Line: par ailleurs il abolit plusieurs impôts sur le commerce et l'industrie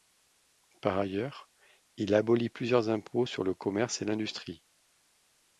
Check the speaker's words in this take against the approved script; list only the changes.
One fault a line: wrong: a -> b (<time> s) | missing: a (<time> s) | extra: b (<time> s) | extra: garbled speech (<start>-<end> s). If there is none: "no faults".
no faults